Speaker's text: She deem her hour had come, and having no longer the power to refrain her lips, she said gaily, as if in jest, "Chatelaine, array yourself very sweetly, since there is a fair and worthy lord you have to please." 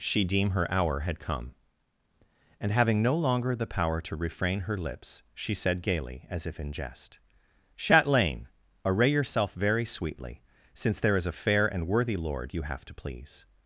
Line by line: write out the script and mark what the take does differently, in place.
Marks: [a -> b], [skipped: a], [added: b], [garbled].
She deem her hour had come, and having no longer the power to refrain her lips, she said gaily, as if in jest, "Chatelaine, array yourself very sweetly, since there is a fair and worthy lord you have to please."